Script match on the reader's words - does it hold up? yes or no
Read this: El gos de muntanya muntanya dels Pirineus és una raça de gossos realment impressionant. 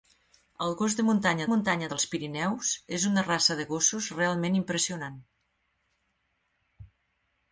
yes